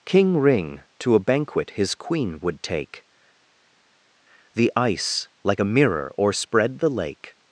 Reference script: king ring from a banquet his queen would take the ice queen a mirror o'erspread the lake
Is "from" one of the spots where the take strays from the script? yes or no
yes